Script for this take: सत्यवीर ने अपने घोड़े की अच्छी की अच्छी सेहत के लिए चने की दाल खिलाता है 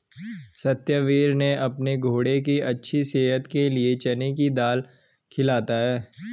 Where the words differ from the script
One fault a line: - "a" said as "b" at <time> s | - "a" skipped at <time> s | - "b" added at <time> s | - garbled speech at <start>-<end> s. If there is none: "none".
- "की अच्छी" skipped at 3.0 s